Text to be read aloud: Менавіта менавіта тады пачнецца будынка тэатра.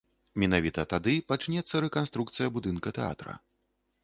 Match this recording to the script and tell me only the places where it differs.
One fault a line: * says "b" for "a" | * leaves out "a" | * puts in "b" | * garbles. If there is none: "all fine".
* leaves out "менавіта"
* puts in "рэканструкцыя"